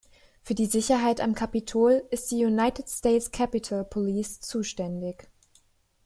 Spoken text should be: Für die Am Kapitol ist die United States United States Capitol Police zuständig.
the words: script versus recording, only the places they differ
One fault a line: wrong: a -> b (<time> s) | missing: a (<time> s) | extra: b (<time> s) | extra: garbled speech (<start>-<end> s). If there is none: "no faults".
extra: Sicherheit (0.7 s)
missing: United States (3.3 s)